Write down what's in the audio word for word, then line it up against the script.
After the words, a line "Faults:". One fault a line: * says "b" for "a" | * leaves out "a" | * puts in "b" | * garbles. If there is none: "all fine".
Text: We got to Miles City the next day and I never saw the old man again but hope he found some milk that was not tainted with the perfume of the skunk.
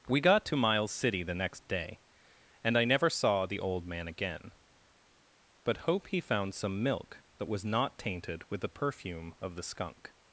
We got to Miles City the next day and I never saw the old man again but hope he found some milk that was not tainted with the perfume of the skunk.
Faults:
all fine